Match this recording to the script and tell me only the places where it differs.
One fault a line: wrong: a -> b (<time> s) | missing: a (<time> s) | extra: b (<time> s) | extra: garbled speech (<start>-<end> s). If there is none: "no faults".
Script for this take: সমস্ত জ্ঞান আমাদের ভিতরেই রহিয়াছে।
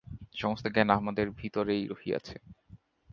no faults